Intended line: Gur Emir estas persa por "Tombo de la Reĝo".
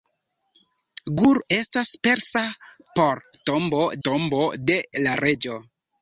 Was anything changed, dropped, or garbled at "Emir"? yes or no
yes